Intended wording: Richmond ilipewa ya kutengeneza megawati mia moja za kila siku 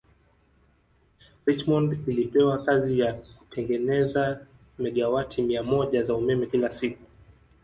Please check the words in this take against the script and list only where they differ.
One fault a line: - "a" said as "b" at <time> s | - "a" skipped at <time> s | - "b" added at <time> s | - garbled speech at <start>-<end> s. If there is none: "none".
- "kazi" added at 2.6 s
- "umeme" added at 6.2 s